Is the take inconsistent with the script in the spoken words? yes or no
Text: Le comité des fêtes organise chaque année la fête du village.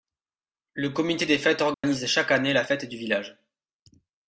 no